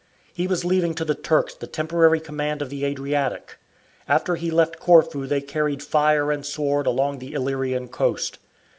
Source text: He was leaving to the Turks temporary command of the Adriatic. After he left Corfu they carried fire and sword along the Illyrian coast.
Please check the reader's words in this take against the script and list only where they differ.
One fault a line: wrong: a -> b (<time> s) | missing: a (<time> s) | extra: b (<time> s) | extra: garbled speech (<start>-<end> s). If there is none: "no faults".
extra: the (1.5 s)